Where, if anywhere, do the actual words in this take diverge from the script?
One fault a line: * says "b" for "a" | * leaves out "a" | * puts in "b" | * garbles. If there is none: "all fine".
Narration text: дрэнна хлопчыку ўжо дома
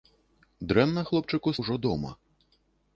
all fine